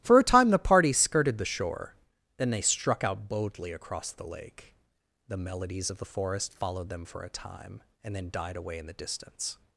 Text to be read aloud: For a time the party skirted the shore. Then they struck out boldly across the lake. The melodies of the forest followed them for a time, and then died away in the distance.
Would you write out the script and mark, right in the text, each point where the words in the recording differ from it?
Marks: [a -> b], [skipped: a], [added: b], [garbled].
For a time the party skirted the shore. Then they struck out boldly across the lake. The melodies of the forest followed them for a time, and then died away in the distance.